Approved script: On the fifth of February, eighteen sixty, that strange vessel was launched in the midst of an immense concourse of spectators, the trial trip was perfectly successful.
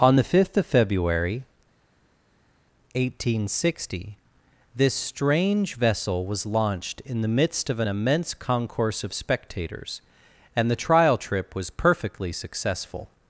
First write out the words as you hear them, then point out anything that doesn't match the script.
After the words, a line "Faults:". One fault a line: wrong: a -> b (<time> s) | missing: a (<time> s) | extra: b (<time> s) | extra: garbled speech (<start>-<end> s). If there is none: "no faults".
On the fifth of February, eighteen sixty, this strange vessel was launched in the midst of an immense concourse of spectators, and the trial trip was perfectly successful.
Faults:
wrong: that -> this (4.7 s)
extra: and (10.6 s)